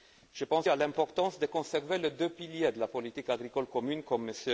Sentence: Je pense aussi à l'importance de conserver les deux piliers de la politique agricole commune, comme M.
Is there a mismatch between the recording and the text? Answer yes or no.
yes